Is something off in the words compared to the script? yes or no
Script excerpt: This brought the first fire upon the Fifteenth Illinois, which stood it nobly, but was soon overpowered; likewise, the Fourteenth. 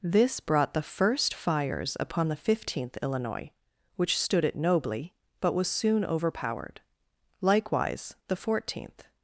yes